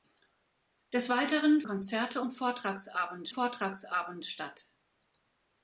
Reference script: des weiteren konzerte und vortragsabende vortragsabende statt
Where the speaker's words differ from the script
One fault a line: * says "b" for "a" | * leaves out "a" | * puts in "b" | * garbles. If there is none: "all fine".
all fine